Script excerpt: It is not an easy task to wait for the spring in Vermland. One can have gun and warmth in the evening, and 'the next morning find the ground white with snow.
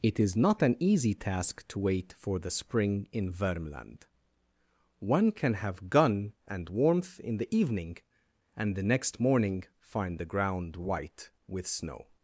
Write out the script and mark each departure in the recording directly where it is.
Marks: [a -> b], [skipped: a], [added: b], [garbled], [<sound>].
It is not an easy task to wait for the spring in Vermland. One can have gun and warmth in the evening, and 'the next morning find the ground white with snow.